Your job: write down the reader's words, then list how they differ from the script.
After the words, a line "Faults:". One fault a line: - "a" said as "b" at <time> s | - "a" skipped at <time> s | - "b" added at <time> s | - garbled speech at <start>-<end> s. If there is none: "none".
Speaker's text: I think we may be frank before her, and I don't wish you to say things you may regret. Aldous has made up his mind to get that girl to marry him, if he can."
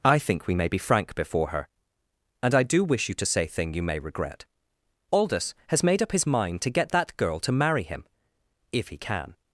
I think we may be frank before her, and I do wish you to say thing you may regret. Aldous has made up his mind to get that girl to marry him, if he can."
Faults:
- "don't" said as "do" at 2.6 s
- "things" said as "thing" at 3.5 s